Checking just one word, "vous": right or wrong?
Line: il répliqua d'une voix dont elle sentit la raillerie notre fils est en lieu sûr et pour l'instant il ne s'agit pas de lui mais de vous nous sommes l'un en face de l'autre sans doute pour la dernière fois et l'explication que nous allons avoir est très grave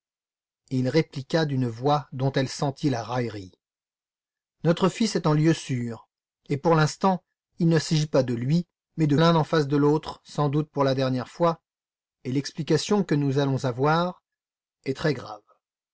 wrong